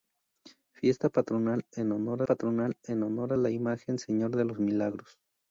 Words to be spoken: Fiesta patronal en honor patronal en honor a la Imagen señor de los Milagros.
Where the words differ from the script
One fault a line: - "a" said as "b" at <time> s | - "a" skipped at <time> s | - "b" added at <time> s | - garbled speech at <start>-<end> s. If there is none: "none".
none